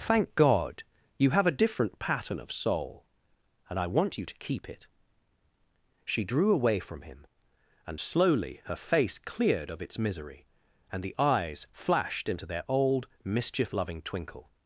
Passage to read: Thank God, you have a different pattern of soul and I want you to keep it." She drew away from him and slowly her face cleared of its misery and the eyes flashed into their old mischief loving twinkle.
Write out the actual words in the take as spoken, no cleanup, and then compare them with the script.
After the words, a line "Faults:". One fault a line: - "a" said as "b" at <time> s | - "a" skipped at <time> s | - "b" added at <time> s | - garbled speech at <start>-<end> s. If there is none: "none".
Thank God, you have a different pattern of soul and I want you to keep it." She drew away from him and slowly her face cleared of its misery and the eyes flashed into their old mischief loving twinkle.
Faults:
none